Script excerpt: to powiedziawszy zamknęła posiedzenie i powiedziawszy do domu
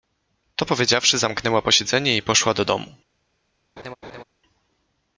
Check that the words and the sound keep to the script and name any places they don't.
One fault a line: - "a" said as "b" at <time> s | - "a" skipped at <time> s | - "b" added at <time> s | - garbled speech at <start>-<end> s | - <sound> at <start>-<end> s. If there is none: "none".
- "powiedziawszy" said as "poszła" at 2.2 s
- laugh at 3.8-4.2 s